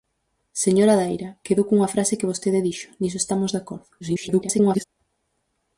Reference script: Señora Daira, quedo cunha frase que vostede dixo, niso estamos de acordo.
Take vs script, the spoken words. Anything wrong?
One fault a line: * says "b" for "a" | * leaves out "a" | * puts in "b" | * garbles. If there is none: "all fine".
* garbles